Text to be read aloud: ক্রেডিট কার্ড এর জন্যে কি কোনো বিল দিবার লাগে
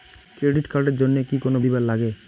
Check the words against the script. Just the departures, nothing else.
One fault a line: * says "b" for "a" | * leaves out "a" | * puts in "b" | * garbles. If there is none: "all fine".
* leaves out "বিল"